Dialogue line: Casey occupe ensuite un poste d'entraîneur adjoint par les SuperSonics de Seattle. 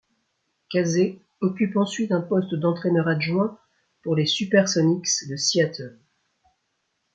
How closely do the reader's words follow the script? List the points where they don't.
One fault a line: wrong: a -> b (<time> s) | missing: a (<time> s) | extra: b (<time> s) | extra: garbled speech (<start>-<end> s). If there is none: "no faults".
wrong: par -> pour (4.0 s)